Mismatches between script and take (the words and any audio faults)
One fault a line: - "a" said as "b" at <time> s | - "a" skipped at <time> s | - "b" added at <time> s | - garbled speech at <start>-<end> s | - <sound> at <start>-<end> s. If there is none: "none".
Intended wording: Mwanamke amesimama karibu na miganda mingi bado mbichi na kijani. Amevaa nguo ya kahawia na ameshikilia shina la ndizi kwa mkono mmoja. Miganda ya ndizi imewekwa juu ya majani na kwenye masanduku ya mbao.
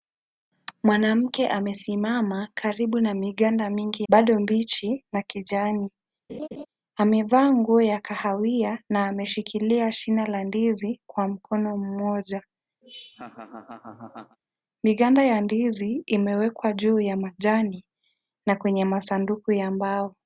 - laugh at 6.3-6.7 s
- laugh at 12.8-14.4 s